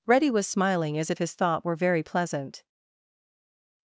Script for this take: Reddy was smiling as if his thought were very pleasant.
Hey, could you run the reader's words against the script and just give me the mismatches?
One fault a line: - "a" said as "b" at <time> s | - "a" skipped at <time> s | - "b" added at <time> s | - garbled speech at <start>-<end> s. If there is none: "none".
none